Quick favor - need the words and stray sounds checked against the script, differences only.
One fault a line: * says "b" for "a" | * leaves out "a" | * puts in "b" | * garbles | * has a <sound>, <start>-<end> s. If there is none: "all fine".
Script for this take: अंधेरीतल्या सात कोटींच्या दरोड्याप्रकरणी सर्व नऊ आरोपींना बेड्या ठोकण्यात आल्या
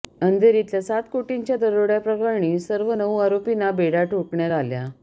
all fine